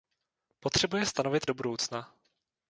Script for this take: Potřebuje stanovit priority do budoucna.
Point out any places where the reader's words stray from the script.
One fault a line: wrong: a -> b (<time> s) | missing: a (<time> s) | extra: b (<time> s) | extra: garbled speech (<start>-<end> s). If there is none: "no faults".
missing: priority (1.5 s)